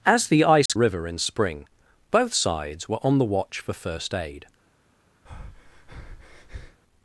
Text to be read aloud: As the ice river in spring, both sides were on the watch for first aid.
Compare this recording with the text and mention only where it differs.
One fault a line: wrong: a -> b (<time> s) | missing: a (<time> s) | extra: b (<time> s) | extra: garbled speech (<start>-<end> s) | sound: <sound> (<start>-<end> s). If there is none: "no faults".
sound: dropout (0.7-0.7 s)
sound: breath (5.3-6.8 s)